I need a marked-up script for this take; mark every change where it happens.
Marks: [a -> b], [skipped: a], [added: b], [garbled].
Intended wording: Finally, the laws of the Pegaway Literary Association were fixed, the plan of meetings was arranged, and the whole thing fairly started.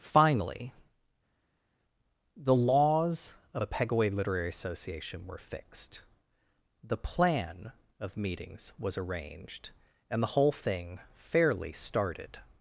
Finally, the laws of [the -> a] Pegaway Literary Association were fixed, the plan of meetings was arranged, and the whole thing fairly started.